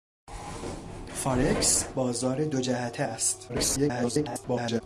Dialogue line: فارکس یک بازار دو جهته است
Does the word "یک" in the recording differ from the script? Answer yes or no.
yes